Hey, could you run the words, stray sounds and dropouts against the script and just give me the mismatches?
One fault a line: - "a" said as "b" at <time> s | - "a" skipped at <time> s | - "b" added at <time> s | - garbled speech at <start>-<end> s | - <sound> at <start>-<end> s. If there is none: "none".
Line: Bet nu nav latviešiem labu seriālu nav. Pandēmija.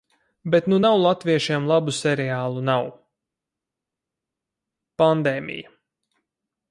none